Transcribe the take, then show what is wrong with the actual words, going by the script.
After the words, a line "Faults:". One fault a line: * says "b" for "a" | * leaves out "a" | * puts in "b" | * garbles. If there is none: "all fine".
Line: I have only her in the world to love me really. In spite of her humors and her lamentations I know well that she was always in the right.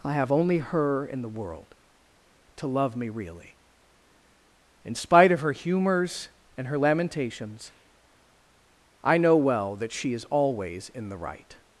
I have only her in the world to love me really. In spite of her humors and her lamentations I know well that she is always in the right.
Faults:
* says "is" for "was"